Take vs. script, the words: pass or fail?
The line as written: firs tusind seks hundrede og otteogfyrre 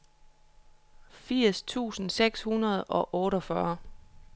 pass